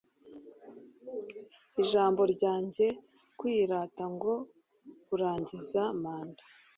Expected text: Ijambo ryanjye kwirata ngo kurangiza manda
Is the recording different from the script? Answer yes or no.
no